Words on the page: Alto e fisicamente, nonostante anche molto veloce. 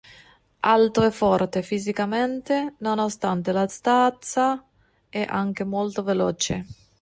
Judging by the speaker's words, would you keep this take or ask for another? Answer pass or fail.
fail